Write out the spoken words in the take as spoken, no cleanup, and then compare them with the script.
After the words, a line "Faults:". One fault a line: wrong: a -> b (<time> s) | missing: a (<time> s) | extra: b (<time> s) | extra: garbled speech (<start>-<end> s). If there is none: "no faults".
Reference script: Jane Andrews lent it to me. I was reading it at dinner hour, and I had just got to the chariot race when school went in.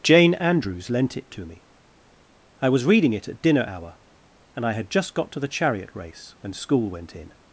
Jane Andrews lent it to me. I was reading it at dinner hour, and I had just got to the chariot race when school went in.
Faults:
no faults